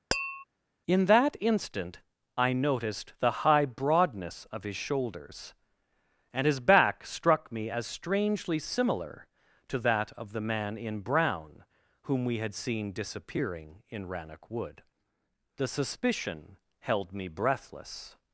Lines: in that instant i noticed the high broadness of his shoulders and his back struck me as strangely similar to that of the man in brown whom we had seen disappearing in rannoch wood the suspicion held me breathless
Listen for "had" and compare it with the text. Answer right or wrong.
right